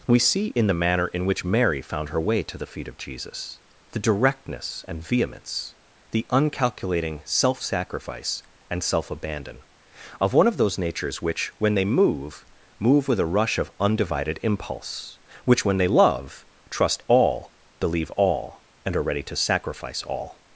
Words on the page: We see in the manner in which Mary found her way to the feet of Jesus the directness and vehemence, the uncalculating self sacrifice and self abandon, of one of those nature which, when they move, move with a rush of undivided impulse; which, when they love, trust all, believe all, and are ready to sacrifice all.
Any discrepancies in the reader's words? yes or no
yes